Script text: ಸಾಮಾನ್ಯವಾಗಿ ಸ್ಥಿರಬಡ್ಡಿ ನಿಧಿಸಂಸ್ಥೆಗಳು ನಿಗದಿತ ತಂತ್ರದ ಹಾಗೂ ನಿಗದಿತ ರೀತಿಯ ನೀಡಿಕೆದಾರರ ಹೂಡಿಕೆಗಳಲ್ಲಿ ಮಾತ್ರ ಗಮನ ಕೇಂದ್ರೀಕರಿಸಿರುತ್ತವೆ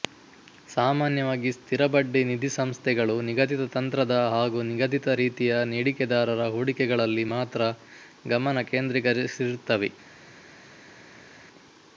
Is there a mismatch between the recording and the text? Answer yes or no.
no